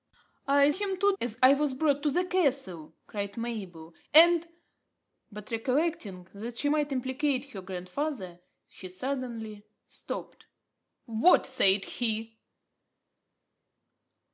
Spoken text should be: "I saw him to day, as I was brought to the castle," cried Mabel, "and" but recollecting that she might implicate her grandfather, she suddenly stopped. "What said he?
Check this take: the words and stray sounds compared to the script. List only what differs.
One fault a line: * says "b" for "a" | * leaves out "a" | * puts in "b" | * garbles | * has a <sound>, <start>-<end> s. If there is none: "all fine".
* leaves out "saw"
* leaves out "day"